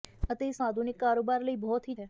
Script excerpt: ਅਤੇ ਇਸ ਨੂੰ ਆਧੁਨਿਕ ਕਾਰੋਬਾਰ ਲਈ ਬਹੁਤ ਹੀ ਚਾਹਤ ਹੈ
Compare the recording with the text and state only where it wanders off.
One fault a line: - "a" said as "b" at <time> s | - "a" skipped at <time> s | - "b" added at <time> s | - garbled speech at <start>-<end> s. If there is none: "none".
- "ਨੂੰ" skipped at 0.6 s
- "ਚਾਹਤ" skipped at 1.9 s